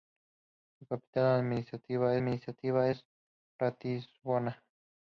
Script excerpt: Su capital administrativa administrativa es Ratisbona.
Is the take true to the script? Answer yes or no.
yes